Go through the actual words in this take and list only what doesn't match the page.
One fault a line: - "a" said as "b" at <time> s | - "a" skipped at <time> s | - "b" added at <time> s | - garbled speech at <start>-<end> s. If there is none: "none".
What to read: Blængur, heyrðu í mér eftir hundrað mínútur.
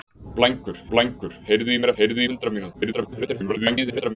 - "blængur" added at 0.9 s
- "eftir" said as "heyrðu" at 2.0 s
- garbled speech at 2.7-4.2 s